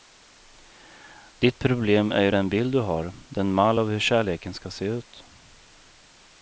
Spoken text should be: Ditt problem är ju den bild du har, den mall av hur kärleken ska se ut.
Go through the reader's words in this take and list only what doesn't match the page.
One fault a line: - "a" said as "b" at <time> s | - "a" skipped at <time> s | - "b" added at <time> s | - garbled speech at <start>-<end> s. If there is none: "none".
none